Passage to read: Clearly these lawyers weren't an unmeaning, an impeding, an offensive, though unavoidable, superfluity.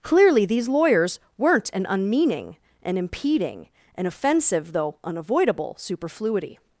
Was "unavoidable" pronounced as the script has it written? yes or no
yes